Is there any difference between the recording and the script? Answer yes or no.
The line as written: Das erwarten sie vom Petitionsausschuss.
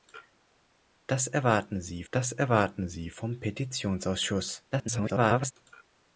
yes